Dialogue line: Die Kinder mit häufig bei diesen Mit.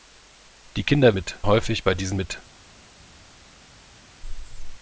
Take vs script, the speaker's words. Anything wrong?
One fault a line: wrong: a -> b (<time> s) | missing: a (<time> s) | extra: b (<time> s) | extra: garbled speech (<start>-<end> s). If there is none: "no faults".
no faults